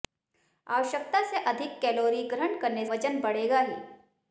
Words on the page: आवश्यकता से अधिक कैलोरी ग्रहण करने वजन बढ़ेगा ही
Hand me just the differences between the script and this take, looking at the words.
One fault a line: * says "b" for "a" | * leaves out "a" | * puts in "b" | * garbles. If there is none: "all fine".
all fine